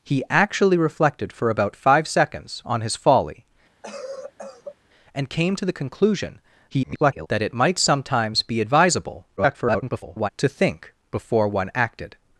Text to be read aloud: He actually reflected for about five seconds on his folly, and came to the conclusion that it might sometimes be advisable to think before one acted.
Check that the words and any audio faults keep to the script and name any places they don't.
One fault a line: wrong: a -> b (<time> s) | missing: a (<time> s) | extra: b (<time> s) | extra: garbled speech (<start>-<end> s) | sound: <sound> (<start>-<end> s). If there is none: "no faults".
sound: cough (3.8-4.8 s)
extra: garbled speech (6.7-7.3 s)
extra: garbled speech (9.4-10.3 s)